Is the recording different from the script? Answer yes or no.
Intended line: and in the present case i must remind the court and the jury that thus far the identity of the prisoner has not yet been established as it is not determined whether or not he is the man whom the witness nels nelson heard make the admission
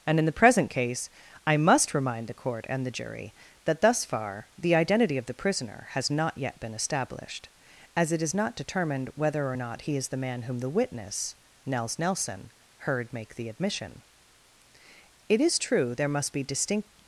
yes